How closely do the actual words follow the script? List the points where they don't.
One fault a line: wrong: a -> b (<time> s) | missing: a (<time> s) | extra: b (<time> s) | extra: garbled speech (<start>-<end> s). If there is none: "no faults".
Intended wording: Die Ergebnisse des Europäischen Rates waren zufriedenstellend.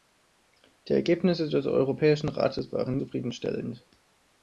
no faults